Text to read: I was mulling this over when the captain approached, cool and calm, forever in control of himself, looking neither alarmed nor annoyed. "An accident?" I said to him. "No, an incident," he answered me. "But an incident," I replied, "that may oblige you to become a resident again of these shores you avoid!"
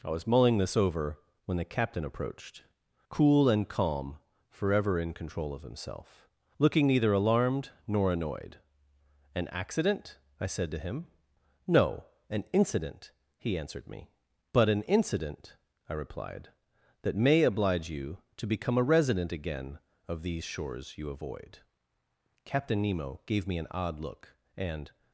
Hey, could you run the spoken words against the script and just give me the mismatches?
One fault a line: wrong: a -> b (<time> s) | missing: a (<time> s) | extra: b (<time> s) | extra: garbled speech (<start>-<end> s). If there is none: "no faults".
extra: Captain Nemo gave me an odd look and (22.5 s)